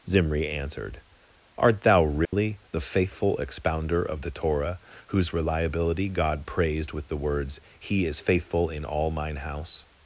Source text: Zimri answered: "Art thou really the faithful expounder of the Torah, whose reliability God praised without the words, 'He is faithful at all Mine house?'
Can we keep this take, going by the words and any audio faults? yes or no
no